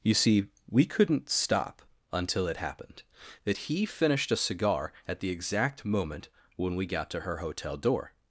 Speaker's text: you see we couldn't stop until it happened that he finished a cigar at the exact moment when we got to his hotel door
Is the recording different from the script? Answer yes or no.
yes